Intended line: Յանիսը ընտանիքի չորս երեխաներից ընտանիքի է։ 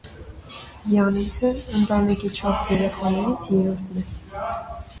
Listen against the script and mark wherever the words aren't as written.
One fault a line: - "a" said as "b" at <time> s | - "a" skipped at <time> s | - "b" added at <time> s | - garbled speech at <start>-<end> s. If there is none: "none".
- "ընտանիքի" said as "երրորդն" at 3.6 s